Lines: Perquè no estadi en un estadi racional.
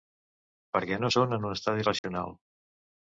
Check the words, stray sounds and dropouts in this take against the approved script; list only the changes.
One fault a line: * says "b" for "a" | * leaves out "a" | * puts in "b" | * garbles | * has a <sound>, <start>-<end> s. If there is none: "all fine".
* says "són" for "estadi"
* has a dropout, 2.0-2.0 s